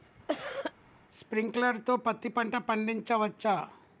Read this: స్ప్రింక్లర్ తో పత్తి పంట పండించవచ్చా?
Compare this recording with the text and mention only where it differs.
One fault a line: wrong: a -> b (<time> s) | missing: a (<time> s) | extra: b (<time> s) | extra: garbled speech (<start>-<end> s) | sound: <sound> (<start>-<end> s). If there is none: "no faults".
sound: cough (0.3-0.7 s)